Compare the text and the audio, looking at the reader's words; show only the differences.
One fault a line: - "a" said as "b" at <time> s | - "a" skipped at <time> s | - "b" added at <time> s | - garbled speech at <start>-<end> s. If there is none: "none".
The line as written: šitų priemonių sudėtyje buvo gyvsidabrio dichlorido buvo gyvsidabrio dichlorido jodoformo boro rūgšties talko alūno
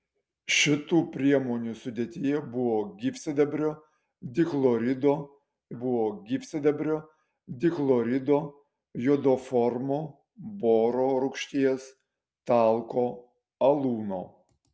none